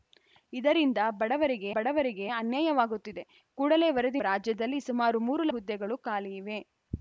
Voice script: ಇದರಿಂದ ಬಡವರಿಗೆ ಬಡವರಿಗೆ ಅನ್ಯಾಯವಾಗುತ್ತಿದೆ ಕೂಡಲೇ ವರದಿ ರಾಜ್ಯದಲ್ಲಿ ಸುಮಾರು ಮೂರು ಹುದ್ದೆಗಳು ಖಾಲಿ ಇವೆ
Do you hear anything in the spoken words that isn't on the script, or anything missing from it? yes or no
no